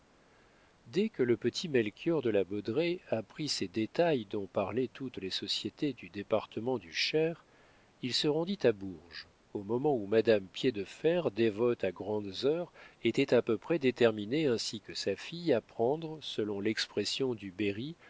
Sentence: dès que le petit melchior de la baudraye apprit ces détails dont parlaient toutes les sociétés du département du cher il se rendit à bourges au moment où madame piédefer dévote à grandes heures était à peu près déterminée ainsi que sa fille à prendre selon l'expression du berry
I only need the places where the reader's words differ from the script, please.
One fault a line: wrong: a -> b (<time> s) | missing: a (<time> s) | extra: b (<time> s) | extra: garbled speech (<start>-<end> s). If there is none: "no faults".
no faults